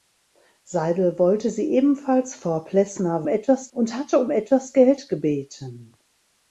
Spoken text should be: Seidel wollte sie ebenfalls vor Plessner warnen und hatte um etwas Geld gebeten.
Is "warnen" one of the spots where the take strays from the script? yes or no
yes